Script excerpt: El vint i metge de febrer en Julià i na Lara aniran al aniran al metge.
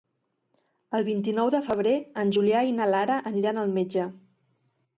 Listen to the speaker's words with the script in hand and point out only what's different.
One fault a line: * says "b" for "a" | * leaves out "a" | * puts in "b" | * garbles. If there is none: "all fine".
* says "nou" for "metge"
* leaves out "aniran al"